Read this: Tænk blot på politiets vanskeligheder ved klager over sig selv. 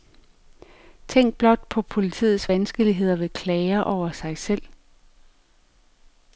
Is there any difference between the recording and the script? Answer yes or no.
no